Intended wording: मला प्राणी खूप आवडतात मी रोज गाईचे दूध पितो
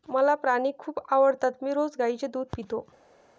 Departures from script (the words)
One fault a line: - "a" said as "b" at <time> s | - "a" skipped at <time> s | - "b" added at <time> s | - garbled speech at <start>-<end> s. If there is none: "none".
none